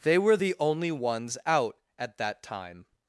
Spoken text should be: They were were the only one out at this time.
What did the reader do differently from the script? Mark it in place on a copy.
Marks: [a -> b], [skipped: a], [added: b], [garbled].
They were [skipped: were] the only [one -> ones] out at [this -> that] time.